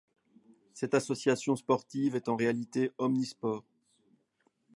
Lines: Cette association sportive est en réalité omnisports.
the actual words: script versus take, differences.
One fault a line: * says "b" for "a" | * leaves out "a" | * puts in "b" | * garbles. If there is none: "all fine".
all fine